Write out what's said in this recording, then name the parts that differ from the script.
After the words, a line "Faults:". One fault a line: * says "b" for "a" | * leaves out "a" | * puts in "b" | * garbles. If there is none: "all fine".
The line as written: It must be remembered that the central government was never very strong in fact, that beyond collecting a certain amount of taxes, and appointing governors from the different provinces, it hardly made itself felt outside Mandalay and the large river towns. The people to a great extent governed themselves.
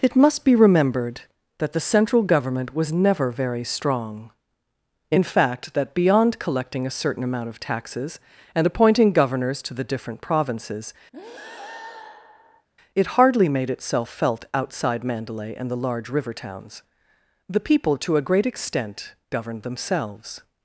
It must be remembered that the central government was never very strong in fact, that beyond collecting a certain amount of taxes, and appointing governors to the different provinces, it hardly made itself felt outside Mandalay and the large river towns. The people to a great extent governed themselves.
Faults:
* says "to" for "from"